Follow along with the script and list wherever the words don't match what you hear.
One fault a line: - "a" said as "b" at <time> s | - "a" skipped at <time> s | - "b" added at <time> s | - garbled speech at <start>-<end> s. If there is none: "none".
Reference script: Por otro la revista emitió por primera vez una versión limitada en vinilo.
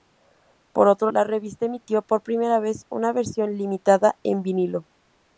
none